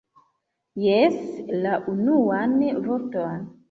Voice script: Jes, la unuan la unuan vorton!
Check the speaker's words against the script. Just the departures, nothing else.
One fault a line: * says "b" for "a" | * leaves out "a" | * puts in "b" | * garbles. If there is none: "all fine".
* leaves out "la unuan"